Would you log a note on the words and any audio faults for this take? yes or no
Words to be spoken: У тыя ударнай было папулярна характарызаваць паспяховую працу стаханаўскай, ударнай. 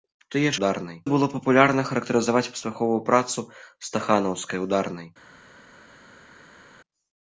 no